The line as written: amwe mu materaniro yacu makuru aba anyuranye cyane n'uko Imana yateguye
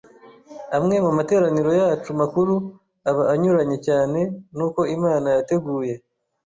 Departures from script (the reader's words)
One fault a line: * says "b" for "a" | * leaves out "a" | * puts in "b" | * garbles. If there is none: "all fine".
all fine